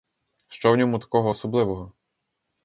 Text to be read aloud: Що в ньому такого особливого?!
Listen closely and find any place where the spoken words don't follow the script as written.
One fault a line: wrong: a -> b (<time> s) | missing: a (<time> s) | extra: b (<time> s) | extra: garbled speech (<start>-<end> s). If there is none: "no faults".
no faults